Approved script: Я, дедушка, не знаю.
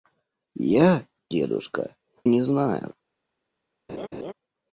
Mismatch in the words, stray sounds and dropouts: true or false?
true